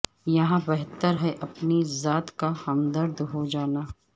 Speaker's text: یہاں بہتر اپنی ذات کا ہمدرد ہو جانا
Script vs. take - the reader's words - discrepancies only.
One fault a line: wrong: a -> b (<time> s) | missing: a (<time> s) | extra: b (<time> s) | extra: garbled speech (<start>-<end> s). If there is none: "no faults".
extra: ہے (1.2 s)